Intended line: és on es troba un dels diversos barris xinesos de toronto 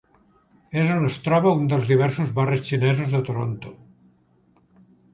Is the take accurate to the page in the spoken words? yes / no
yes